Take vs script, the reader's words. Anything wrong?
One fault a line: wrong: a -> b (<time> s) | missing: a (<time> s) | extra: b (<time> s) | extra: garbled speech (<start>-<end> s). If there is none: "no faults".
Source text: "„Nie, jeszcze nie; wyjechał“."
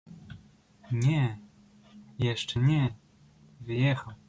no faults